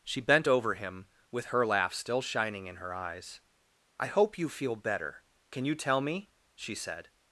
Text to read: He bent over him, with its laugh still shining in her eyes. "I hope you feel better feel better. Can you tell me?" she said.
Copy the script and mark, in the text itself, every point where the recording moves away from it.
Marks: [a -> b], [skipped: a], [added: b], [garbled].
[He -> She] bent over him, with [its -> her] laugh still shining in her eyes. "I hope you feel better [skipped: feel better.] Can you tell me?" she said.